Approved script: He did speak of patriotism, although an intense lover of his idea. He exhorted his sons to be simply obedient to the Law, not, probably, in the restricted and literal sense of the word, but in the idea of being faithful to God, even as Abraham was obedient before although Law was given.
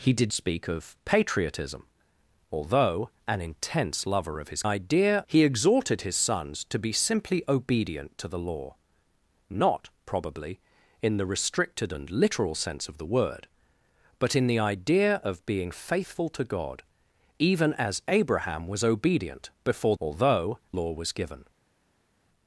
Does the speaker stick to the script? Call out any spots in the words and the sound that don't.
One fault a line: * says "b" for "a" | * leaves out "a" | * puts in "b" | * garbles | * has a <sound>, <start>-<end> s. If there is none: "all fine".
all fine